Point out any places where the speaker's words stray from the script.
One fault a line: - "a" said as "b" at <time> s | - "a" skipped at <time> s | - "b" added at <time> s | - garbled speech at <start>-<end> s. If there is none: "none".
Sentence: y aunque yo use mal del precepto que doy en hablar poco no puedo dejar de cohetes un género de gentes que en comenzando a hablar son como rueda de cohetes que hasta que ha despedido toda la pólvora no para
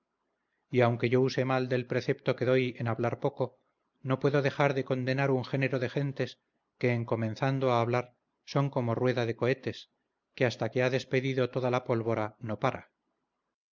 - "cohetes" said as "condenar" at 4.8 s